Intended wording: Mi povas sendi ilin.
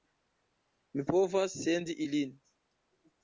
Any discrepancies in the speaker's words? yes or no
no